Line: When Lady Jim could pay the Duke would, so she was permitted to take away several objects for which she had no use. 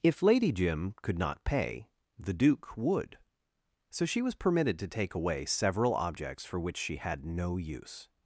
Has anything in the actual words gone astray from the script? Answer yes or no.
yes